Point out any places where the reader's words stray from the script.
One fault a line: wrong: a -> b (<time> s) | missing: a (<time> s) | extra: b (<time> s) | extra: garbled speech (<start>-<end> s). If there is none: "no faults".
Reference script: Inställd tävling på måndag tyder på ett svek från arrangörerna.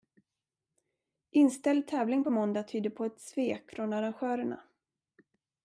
no faults